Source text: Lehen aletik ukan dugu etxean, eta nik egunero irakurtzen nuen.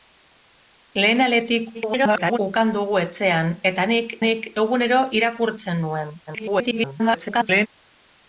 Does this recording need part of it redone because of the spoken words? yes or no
yes